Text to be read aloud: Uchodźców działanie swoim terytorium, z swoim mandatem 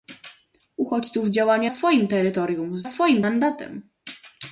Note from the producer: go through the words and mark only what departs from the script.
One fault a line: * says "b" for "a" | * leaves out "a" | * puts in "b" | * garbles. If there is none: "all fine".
all fine